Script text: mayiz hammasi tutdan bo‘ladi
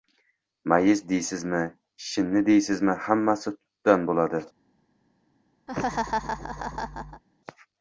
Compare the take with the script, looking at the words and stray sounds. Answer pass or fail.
fail